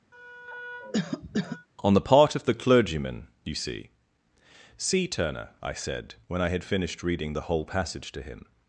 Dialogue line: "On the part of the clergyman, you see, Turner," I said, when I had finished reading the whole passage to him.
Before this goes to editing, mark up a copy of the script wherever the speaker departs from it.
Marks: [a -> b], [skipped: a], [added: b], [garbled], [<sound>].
[cough] "On the part of the clergyman, you see, [added: see] Turner," I said, when I had finished reading the whole passage to him.